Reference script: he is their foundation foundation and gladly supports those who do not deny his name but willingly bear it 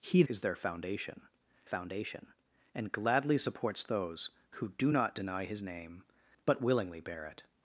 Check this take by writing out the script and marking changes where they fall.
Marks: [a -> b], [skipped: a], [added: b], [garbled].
he is their foundation foundation and gladly supports those who do not deny his name but willingly bear it